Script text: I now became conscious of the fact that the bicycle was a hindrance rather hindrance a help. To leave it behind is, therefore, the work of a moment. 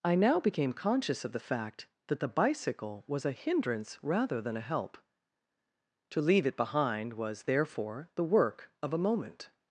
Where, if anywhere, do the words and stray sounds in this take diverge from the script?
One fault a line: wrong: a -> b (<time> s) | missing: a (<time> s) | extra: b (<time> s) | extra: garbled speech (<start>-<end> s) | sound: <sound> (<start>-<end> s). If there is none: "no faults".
wrong: hindrance -> than (4.4 s)
wrong: is -> was (7.1 s)